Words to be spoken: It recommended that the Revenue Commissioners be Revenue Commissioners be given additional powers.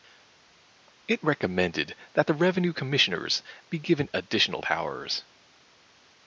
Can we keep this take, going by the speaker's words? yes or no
no